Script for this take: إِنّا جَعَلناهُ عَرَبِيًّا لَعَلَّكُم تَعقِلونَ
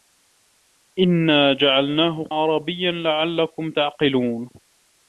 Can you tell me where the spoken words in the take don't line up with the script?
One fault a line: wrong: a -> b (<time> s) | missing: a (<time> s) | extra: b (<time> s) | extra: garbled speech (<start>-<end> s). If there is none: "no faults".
no faults